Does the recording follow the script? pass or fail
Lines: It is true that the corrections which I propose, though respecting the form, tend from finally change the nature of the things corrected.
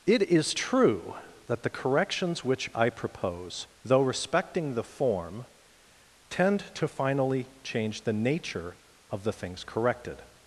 fail